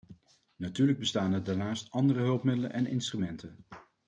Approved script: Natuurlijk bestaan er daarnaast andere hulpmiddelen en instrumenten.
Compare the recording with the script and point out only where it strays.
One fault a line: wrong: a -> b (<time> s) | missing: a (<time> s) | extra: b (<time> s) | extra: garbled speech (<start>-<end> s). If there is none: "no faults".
no faults